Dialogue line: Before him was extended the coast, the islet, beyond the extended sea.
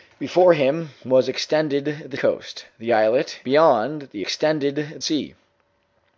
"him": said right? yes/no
yes